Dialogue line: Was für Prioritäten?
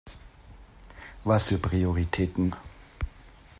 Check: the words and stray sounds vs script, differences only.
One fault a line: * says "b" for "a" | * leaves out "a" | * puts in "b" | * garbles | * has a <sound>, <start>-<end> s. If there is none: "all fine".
all fine